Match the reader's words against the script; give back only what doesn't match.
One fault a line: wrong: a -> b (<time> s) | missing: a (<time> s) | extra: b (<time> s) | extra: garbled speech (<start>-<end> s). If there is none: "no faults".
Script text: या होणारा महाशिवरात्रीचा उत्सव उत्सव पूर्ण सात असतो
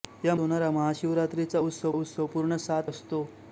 no faults